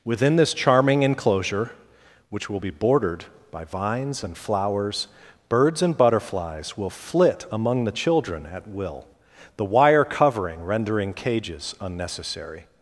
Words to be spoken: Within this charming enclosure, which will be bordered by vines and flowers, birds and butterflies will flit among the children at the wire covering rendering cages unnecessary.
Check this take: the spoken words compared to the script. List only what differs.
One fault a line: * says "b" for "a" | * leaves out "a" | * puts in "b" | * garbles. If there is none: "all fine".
* puts in "will"